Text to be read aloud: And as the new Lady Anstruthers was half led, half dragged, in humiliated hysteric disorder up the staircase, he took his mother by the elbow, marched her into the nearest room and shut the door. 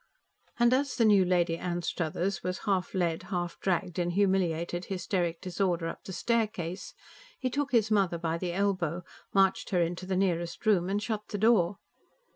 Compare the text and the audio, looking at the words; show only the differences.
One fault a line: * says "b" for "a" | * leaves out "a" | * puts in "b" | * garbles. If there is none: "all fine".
all fine